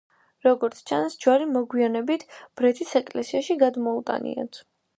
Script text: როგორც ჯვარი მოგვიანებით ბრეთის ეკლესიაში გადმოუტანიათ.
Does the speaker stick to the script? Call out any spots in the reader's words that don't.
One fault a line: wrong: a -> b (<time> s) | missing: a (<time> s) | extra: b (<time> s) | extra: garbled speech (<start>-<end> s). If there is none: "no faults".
extra: ჩანს (0.9 s)